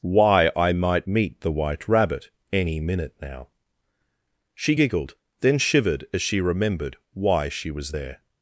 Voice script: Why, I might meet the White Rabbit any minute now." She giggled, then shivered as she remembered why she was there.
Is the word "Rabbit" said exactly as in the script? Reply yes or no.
yes